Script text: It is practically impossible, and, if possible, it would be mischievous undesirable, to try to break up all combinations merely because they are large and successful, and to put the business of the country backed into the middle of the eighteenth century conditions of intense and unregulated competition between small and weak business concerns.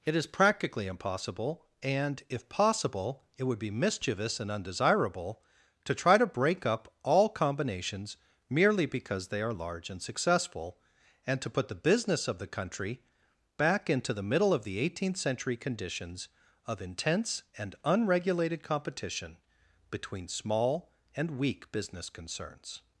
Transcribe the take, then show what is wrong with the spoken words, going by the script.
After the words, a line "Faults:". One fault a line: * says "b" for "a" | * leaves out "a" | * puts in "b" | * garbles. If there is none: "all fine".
It is practically impossible, and, if possible, it would be mischievous and undesirable, to try to break up all combinations merely because they are large and successful, and to put the business of the country back into the middle of the eighteenth century conditions of intense and unregulated competition between small and weak business concerns.
Faults:
* puts in "and"
* says "back" for "backed"